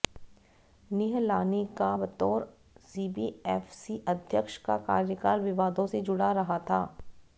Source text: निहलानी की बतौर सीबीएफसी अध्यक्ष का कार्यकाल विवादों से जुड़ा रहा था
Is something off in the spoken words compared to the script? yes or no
yes